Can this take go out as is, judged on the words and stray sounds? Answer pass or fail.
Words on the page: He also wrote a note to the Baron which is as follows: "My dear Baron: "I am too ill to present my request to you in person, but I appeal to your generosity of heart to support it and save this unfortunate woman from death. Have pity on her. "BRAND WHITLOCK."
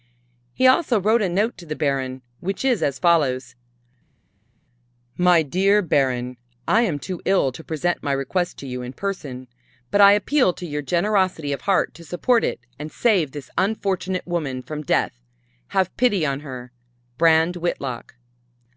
pass